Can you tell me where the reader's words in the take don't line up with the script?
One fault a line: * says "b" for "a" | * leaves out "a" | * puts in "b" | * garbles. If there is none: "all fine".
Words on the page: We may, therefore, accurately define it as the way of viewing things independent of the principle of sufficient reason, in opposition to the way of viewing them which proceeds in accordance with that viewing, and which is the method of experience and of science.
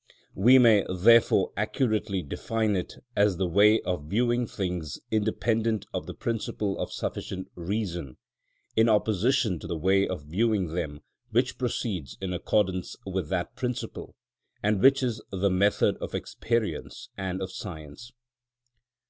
* says "principle" for "viewing"